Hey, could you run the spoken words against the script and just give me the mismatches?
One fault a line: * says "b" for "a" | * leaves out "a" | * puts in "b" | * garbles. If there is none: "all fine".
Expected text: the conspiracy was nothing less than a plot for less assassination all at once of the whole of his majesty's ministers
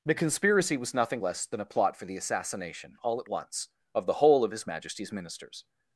* says "the" for "less"